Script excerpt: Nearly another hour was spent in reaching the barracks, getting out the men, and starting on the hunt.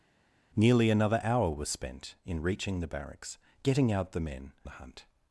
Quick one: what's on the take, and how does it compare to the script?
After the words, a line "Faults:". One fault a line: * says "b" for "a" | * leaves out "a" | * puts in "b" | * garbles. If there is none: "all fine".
Nearly another hour was spent in reaching the barracks, getting out the men, the hunt.
Faults:
* leaves out "and starting on"